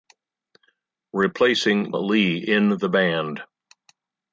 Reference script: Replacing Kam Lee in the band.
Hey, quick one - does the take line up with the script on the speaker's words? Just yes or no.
no